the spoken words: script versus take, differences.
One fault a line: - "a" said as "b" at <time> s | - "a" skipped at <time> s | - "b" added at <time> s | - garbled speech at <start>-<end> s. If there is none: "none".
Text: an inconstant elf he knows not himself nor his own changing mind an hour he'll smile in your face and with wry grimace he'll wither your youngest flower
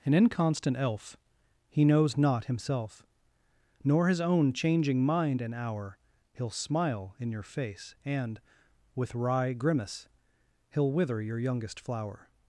none